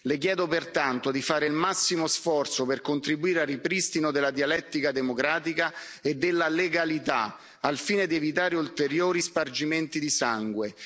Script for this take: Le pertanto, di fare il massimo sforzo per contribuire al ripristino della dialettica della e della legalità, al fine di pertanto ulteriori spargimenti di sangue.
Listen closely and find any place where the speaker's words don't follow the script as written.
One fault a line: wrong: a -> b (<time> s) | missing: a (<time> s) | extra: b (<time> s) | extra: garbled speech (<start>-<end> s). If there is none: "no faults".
extra: chiedo (0.2 s)
wrong: della -> democratica (4.9 s)
wrong: pertanto -> evitare (8.2 s)